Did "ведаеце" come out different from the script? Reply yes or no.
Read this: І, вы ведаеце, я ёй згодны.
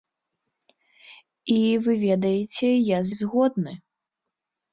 no